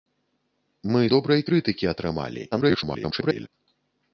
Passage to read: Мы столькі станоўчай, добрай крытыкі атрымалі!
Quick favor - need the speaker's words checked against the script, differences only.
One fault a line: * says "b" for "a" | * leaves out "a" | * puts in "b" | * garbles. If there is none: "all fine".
* leaves out "столькі станоўчай"
* garbles